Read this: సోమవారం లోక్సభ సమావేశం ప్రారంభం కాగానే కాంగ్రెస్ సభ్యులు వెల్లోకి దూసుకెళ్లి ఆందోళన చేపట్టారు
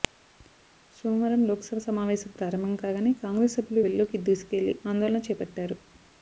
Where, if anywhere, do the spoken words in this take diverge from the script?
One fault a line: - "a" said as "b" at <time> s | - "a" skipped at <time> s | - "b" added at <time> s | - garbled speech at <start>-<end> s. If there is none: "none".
none